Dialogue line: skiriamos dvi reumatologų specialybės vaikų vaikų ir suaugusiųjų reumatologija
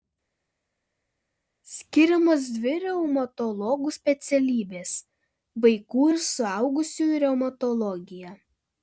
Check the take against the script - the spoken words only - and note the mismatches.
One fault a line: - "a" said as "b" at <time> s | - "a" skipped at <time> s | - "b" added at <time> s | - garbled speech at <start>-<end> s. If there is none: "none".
- "vaikų" skipped at 6.1 s